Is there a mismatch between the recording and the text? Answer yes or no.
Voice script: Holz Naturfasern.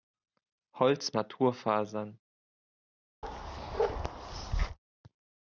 no